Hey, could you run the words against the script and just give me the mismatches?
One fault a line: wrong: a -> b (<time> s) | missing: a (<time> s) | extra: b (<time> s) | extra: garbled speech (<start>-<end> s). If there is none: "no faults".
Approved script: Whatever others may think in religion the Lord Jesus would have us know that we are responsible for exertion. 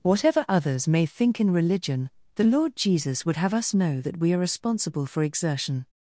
no faults